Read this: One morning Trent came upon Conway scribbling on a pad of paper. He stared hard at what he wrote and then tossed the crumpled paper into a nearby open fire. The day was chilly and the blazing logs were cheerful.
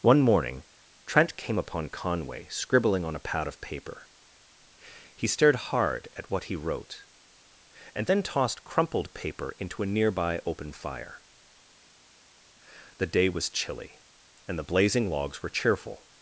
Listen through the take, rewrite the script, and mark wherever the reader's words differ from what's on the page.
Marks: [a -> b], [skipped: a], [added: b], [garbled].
One morning Trent came upon Conway scribbling on a pad of paper. He stared hard at what he wrote and then tossed [skipped: the] crumpled paper into a nearby open fire. The day was chilly and the blazing logs were cheerful.